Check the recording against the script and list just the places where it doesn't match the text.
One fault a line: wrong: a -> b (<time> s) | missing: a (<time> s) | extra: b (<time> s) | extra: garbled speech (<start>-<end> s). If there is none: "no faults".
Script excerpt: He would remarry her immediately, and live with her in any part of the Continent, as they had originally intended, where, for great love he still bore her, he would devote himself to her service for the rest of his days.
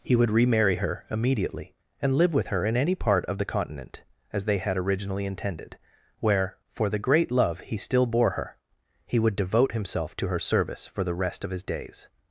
extra: the (6.9 s)